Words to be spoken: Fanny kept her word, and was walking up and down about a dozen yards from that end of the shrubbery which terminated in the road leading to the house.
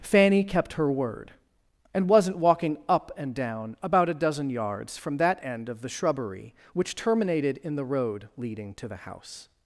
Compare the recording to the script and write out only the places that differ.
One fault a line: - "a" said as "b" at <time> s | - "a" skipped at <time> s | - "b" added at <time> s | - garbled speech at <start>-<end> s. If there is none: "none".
- "was" said as "wasn't" at 2.1 s